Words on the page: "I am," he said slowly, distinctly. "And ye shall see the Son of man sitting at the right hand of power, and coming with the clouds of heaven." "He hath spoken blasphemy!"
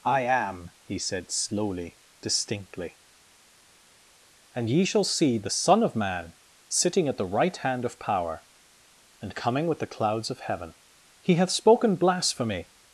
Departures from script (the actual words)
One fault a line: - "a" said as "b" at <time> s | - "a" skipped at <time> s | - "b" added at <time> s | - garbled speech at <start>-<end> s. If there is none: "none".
none